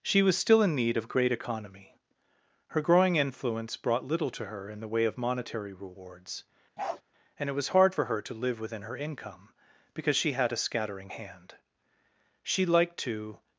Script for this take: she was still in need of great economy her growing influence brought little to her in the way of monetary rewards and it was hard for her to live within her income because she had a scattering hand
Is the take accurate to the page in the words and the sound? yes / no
no